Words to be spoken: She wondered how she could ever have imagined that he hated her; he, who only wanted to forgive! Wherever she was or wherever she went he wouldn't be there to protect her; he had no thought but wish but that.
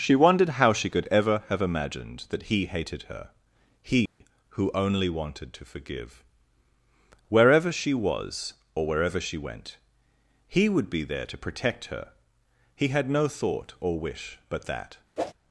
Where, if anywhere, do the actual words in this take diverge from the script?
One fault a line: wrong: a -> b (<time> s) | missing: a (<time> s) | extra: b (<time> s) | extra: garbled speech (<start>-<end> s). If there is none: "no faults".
wrong: wouldn't -> would (10.7 s)
wrong: but -> or (13.8 s)